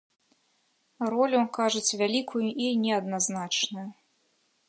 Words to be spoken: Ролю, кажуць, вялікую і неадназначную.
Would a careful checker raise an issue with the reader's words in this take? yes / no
no